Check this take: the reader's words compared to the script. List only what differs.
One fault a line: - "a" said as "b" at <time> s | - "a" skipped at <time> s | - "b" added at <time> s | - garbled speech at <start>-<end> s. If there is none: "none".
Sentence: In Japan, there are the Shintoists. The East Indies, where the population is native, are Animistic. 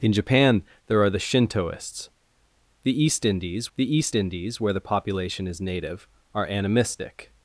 - "the East Indies" added at 3.8 s